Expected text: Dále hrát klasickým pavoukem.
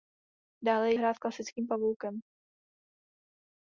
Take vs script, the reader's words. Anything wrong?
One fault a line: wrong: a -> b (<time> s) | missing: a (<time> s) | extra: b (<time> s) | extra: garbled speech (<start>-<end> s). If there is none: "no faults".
no faults